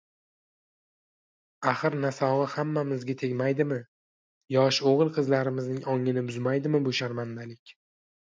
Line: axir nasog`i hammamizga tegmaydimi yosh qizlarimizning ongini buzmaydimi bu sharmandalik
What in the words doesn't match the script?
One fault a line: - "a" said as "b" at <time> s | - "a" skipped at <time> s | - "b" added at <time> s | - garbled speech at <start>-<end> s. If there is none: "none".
- "o`g`il" added at 4.9 s